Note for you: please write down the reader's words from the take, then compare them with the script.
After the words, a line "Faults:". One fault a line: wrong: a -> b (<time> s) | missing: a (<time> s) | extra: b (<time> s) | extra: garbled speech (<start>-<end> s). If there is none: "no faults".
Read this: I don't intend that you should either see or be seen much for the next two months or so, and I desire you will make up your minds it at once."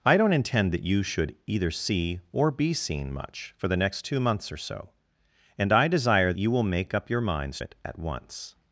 I don't intend that you should either see or be seen much for the next two months or so, and I desire you will make up your minds it at once."
Faults:
no faults